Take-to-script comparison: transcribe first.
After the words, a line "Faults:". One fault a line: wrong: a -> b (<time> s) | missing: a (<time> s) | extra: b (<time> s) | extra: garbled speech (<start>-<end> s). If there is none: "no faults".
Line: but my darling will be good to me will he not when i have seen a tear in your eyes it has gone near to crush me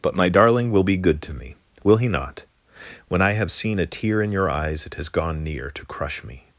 but my darling will be good to me will he not when i have seen a tear in your eyes it has gone near to crush me
Faults:
no faults